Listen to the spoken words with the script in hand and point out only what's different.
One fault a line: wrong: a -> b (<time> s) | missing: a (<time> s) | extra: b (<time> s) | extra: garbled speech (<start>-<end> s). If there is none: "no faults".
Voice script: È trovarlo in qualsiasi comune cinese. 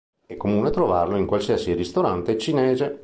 extra: comune (0.3 s)
wrong: comune -> ristorante (1.7 s)